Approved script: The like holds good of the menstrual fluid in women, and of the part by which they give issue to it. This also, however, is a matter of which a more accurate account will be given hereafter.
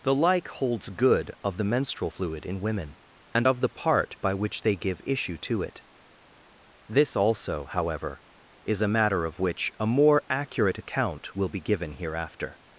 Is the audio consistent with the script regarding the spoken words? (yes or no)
yes